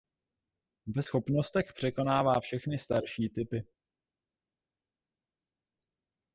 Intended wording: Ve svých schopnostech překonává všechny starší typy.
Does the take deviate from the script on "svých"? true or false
true